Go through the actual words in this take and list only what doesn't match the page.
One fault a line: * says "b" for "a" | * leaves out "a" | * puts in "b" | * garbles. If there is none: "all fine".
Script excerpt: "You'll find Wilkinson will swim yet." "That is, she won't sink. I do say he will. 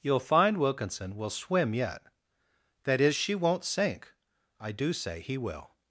all fine